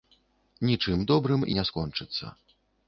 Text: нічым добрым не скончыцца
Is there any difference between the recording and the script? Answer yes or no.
no